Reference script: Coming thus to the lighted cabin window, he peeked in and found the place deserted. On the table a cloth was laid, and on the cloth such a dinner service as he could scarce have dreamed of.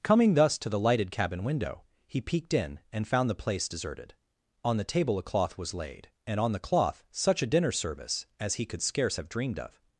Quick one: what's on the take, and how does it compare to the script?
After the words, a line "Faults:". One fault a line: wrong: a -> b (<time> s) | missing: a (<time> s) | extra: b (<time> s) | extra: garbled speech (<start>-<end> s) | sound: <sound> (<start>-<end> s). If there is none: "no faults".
Coming thus to the lighted cabin window, he peeked in and found the place deserted. On the table a cloth was laid, and on the cloth such a dinner service as he could scarce have dreamed of.
Faults:
no faults